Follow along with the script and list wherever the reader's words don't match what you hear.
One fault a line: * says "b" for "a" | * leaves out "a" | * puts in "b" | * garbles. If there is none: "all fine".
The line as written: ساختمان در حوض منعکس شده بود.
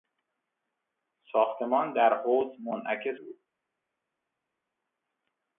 * leaves out "شده"